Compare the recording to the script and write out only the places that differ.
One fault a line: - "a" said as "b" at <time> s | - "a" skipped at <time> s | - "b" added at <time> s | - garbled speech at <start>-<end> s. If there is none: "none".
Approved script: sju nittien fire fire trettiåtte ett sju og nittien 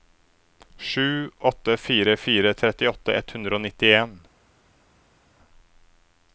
- "nittien" said as "åtte" at 1.4 s
- "sju" said as "hundre" at 3.3 s